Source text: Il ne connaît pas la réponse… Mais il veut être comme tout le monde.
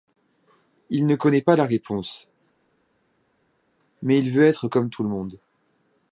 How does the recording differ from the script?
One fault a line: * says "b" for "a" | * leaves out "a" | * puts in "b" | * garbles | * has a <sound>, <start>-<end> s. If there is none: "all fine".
all fine